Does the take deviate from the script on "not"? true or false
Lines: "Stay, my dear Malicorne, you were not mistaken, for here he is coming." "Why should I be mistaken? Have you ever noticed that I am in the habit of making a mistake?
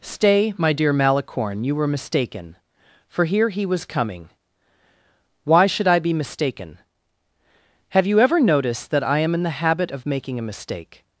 true